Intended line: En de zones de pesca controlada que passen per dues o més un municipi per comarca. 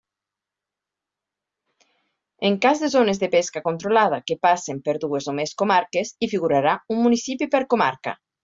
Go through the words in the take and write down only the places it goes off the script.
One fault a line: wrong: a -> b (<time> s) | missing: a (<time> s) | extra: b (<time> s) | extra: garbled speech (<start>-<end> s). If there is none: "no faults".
extra: cas (2.6 s)
extra: comarques hi figurarà (5.6 s)